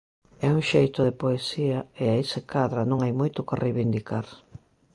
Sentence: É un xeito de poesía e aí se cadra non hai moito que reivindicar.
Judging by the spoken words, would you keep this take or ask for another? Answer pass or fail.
pass